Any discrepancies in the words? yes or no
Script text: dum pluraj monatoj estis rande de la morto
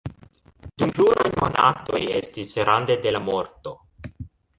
no